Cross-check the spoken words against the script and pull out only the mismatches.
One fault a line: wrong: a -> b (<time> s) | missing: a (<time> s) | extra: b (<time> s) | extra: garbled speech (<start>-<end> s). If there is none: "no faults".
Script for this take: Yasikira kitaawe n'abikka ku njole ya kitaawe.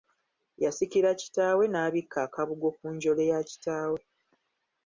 extra: akabugo (2.3 s)